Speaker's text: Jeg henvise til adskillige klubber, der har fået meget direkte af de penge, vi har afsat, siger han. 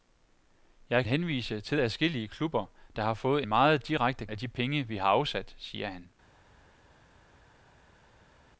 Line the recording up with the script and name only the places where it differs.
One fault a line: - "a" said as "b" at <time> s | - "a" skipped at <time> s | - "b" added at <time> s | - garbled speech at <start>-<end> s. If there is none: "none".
none